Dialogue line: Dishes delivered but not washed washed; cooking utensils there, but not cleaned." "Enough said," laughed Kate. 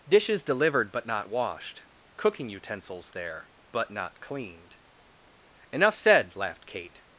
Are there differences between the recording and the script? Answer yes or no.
yes